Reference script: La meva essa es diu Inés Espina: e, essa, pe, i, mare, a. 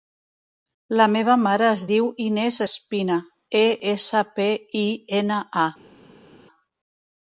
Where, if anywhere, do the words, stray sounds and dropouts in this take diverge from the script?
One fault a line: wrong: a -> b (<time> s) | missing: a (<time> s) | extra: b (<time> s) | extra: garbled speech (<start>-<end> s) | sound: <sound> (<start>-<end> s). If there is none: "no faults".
wrong: essa -> mare (1.4 s)
wrong: mare -> ena (5.2 s)